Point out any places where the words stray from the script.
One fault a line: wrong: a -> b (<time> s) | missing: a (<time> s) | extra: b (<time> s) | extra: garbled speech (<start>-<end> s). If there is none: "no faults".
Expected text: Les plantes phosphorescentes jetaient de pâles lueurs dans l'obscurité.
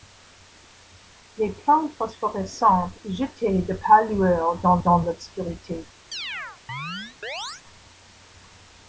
extra: dans (4.8 s)